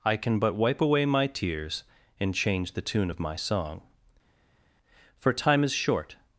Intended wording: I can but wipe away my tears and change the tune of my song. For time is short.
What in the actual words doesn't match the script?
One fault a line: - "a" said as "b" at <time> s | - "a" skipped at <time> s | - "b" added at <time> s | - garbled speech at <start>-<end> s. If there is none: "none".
none